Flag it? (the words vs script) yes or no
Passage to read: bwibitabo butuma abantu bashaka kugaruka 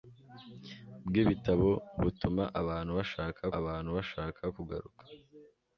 yes